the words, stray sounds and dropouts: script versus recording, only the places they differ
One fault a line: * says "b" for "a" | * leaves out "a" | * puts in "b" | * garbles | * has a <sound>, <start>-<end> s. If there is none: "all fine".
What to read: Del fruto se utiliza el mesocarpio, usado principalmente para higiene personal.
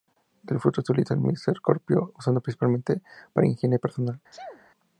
* has a sneeze, 4.3-4.7 s